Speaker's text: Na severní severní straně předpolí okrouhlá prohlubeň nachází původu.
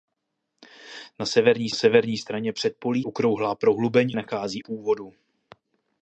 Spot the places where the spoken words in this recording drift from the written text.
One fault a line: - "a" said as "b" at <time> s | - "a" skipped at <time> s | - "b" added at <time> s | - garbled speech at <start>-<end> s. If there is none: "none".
none